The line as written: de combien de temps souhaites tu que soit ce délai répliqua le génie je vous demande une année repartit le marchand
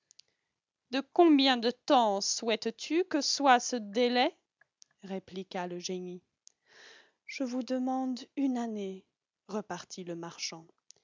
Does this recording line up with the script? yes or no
yes